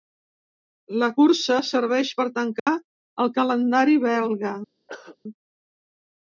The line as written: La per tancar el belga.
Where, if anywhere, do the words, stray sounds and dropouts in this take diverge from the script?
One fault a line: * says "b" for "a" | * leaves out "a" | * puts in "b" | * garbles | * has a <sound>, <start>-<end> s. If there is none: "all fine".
* puts in "cursa serveix"
* has a dropout, 2.6-2.7 s
* puts in "calendari"
* has a throat clearing, 4.9-5.2 s